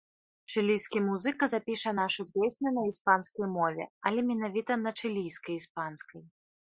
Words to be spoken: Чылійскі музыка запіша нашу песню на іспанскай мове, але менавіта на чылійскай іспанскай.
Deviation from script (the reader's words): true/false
false